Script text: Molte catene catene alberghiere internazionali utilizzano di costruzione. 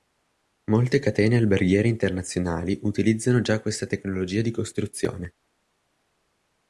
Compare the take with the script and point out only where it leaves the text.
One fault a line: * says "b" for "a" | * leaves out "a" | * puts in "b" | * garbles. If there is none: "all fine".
* leaves out "catene"
* puts in "già questa tecnologia"